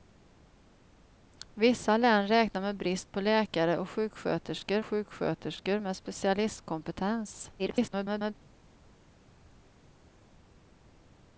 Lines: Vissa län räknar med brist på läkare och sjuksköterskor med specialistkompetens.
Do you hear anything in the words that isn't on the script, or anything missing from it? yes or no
yes